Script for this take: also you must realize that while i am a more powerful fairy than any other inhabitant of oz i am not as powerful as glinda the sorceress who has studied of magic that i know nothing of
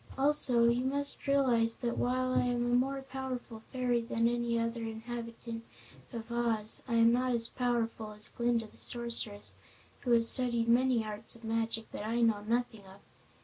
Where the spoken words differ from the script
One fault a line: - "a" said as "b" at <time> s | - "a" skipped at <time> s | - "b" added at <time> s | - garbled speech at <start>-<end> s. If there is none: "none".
- "many arts" added at 10.7 s